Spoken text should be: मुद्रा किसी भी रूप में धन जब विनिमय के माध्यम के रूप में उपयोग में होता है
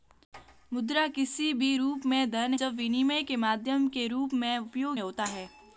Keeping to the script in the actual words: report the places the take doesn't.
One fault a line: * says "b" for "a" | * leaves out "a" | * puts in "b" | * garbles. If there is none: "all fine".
all fine